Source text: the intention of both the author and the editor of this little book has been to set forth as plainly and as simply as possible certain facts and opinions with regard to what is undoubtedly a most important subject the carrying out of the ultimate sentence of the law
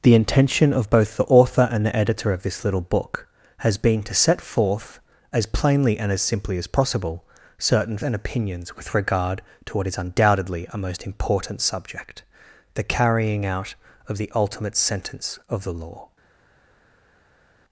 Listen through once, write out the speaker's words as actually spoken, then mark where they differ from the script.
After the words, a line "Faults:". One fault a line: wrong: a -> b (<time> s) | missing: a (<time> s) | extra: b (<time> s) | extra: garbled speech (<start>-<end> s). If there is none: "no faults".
the intention of both the author and the editor of this little book has been to set forth as plainly and as simply as possible certain and opinions with regard to what is undoubtedly a most important subject the carrying out of the ultimate sentence of the law
Faults:
missing: facts (8.0 s)